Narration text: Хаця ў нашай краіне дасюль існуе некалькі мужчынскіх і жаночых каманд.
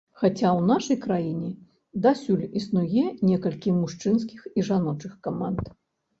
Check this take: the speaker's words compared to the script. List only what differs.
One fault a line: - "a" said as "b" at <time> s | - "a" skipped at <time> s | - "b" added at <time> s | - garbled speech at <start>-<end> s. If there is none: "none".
none